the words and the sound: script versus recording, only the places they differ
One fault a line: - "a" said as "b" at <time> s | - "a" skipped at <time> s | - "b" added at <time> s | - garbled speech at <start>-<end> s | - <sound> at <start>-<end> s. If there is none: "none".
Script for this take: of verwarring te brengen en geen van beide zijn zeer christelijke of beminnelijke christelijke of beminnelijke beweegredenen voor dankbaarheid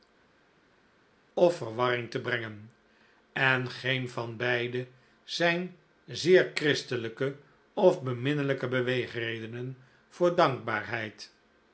- "christelijke of beminnelijke" skipped at 8.7 s